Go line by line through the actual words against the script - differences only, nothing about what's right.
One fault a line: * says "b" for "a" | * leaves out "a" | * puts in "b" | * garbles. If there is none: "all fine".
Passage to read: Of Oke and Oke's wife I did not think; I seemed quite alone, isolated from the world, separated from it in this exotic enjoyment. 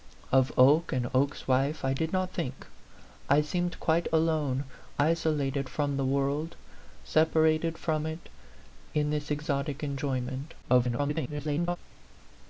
* garbles